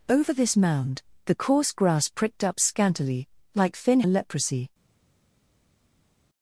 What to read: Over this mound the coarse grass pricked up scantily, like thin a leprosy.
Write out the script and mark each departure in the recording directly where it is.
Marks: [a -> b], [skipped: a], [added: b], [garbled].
Over this mound the coarse grass pricked up scantily, like thin a leprosy.